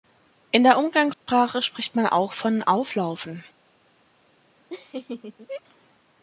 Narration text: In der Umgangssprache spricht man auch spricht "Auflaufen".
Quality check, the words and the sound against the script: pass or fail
fail